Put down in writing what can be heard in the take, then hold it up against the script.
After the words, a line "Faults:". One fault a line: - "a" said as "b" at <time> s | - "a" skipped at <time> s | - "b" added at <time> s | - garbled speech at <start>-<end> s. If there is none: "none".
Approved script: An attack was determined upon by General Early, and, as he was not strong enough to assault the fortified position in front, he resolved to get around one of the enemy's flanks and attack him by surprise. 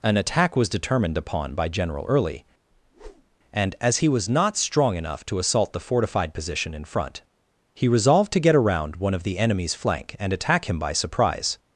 An attack was determined upon by General Early, and, as he was not strong enough to assault the fortified position in front, he resolved to get around one of the enemy's flank and attack him by surprise.
Faults:
- "flanks" said as "flank" at 9.7 s